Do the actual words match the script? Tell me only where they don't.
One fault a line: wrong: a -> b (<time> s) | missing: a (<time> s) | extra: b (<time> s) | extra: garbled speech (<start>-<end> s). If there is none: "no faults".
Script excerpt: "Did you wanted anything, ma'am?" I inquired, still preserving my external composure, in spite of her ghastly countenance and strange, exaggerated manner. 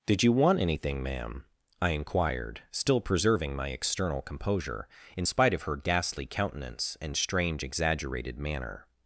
wrong: wanted -> want (0.3 s)